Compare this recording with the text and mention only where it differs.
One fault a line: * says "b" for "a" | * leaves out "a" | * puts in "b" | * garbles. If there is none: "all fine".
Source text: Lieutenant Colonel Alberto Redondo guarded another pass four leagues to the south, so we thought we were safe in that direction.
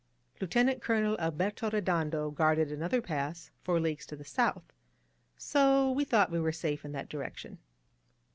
all fine